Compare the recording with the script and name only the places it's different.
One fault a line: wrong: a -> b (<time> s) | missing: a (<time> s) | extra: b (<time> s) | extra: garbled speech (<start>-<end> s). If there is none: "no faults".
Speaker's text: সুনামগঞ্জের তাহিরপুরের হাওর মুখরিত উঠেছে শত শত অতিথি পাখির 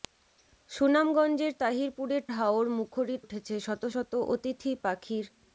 no faults